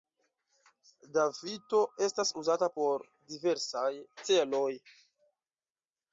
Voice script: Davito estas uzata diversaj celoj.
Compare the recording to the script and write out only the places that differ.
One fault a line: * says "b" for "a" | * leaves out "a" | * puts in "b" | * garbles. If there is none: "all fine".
* puts in "por"